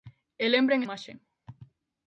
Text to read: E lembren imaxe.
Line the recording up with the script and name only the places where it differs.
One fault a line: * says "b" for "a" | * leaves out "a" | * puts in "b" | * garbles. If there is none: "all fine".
all fine